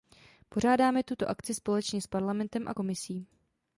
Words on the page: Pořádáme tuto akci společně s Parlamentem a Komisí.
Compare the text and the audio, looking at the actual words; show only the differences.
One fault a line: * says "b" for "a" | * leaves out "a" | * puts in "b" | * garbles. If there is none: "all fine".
all fine